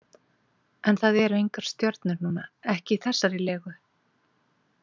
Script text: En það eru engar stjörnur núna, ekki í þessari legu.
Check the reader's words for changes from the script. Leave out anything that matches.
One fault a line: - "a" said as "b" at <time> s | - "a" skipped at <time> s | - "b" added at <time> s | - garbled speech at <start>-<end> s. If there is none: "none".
none